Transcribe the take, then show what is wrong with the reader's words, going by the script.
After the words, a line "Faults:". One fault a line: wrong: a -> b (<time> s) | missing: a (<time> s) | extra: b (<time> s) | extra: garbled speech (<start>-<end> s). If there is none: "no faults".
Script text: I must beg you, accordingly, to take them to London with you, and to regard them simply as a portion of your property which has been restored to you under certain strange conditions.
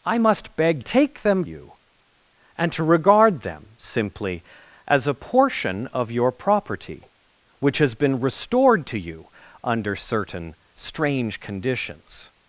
I must beg take them you, and to regard them simply as a portion of your property which has been restored to you under certain strange conditions.
Faults:
missing: you accordingly to (0.8 s)
missing: to London with (1.4 s)